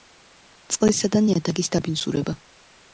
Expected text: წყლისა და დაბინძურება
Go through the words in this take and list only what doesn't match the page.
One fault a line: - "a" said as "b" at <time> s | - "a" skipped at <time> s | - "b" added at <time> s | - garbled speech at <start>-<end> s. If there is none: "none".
- "ნიადაგის" added at 1.3 s